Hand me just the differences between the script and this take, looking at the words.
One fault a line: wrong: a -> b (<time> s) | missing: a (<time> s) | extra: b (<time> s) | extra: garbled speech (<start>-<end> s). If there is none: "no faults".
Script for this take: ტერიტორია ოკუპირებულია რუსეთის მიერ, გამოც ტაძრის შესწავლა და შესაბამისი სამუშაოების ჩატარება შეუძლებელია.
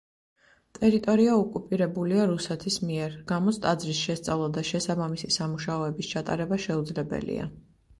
no faults